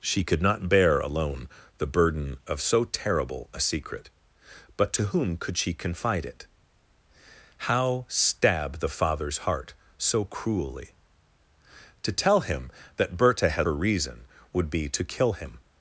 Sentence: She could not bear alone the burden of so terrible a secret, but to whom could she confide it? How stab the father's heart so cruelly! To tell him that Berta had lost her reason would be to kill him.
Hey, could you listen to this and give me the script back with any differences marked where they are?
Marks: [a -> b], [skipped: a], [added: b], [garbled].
She could not bear alone the burden of so terrible a secret, but to whom could she confide it? How stab the father's heart so cruelly! To tell him that Berta had [skipped: lost] her reason would be to kill him.